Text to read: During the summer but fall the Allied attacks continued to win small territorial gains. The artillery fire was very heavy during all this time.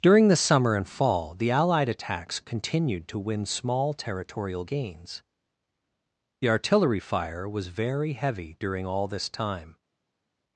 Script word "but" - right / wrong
wrong